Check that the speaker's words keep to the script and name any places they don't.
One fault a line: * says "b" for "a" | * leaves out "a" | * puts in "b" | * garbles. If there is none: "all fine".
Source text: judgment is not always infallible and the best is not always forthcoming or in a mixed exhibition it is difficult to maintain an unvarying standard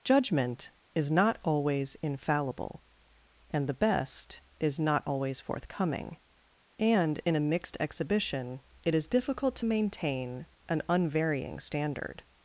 * says "and" for "or"